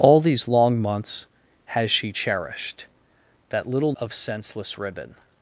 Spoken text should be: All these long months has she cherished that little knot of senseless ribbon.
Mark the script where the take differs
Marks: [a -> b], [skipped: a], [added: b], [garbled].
All these long months has she cherished that little [skipped: knot] of senseless ribbon.